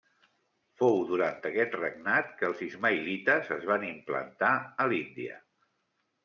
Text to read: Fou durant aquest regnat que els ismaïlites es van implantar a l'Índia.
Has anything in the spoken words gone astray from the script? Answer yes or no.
no